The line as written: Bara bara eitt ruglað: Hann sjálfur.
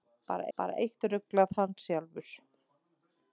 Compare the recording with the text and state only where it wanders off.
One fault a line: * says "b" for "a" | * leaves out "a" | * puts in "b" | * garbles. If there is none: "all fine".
all fine